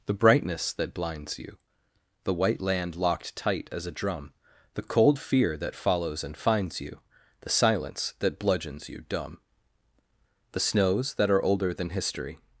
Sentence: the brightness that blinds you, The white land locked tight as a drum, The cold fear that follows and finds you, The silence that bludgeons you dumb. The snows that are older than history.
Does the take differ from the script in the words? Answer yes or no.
no